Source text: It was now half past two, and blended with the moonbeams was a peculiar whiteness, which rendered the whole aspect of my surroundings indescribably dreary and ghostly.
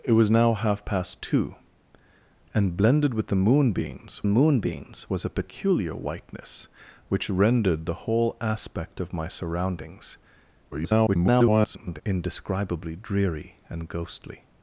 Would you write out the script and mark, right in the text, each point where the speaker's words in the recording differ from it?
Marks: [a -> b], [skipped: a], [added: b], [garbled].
It was now half past two, and blended with the moonbeams [added: moonbeams] was a peculiar whiteness, which rendered the whole aspect of my surroundings [garbled] indescribably dreary and ghostly.